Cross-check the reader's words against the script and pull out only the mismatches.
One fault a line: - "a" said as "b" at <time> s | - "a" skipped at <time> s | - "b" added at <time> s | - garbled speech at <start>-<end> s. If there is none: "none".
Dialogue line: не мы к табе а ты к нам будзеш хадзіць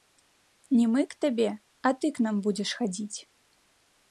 none